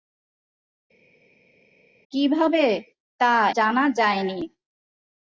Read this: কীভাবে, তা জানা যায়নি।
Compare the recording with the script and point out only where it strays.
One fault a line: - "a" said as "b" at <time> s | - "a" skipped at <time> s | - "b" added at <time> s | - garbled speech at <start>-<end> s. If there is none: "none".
none